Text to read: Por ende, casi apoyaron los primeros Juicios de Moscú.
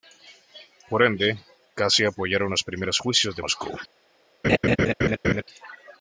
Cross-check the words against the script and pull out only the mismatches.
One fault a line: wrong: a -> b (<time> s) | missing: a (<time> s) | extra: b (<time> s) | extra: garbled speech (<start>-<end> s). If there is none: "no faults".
no faults